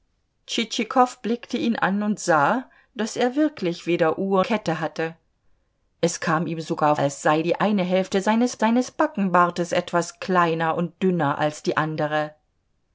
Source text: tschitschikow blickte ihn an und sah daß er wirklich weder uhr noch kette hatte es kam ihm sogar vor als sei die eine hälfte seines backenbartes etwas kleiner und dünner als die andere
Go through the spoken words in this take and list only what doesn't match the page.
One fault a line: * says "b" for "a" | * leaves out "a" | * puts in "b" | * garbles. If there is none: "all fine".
* leaves out "noch"
* leaves out "vor"
* puts in "seines"